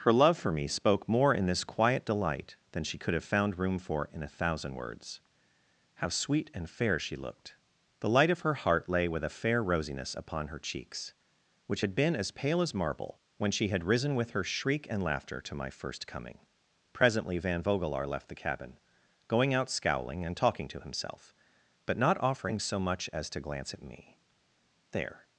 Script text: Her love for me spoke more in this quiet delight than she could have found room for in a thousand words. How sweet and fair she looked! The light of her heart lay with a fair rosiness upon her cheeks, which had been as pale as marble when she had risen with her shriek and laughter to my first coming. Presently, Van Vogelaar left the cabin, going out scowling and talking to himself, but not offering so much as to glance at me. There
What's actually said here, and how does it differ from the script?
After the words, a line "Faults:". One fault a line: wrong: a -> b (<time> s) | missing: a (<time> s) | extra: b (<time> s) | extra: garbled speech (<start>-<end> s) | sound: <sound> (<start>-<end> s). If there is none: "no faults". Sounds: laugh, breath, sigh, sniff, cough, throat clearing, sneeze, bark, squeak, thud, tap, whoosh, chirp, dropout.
Her love for me spoke more in this quiet delight than she could have found room for in a thousand words. How sweet and fair she looked! The light of her heart lay with a fair rosiness upon her cheeks, which had been as pale as marble when she had risen with her shriek and laughter to my first coming. Presently, Van Vogelaar left the cabin, going out scowling and talking to himself, but not offering so much as to glance at me. There
Faults:
no faults